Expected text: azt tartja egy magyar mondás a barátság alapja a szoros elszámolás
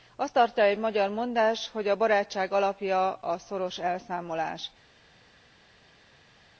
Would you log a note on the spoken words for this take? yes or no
yes